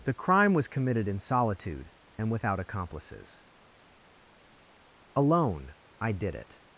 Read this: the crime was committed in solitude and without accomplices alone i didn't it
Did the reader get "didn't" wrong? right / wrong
wrong